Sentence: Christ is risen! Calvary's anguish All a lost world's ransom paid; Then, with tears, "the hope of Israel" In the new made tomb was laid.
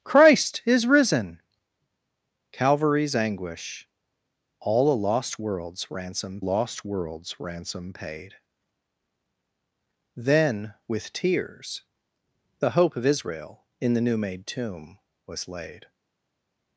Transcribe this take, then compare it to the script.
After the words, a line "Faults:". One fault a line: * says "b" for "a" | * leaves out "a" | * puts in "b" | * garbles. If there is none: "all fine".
Christ is risen! Calvary's anguish All a lost world's ransom lost world's ransom paid; Then, with tears, "the hope of Israel" In the new made tomb was laid.
Faults:
* puts in "lost world's ransom"